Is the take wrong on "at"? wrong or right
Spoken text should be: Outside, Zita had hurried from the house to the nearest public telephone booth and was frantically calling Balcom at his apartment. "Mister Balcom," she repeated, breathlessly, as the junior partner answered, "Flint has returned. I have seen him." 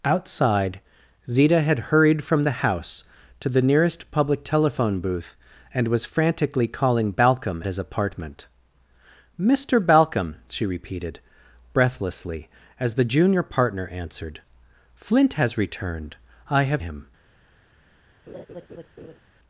wrong